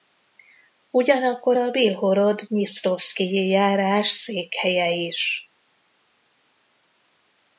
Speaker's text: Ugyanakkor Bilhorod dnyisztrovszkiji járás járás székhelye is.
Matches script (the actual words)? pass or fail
fail